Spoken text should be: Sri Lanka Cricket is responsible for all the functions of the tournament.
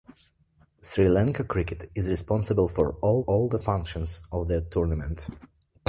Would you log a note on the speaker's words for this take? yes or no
yes